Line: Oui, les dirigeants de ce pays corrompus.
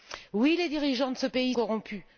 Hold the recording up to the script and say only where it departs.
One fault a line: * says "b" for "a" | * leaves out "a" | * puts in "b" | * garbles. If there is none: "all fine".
all fine